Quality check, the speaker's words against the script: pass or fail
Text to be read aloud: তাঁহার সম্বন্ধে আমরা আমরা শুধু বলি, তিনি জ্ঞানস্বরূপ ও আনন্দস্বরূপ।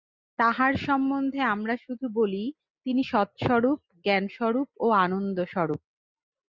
fail